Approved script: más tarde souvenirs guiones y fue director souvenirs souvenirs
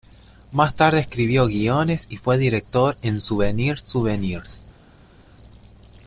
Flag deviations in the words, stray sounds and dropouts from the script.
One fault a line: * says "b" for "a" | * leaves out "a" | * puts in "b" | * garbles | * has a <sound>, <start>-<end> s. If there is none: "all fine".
* says "escribió" for "souvenirs"
* puts in "en"